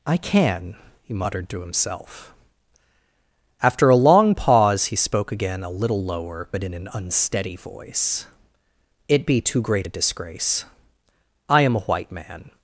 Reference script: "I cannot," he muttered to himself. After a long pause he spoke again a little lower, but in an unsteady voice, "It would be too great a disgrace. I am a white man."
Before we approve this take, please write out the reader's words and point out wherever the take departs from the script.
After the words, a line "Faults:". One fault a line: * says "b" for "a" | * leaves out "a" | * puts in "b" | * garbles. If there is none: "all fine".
"I can," he muttered to himself. After a long pause he spoke again a little lower, but in an unsteady voice, "It be too great a disgrace. I am a white man."
Faults:
* says "can" for "cannot"
* leaves out "would"